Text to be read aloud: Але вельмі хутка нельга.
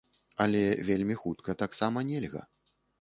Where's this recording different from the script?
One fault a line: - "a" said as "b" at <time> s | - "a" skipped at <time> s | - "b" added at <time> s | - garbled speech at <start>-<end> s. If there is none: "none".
- "таксама" added at 1.6 s